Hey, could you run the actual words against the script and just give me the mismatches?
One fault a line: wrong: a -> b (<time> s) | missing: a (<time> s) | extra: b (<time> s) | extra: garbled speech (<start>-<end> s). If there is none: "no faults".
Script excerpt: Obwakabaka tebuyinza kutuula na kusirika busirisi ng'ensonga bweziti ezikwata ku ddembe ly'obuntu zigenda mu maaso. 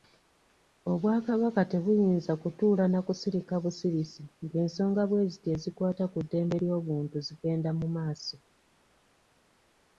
no faults